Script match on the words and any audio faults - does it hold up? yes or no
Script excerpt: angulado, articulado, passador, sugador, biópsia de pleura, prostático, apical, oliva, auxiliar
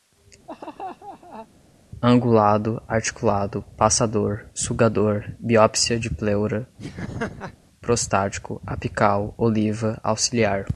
no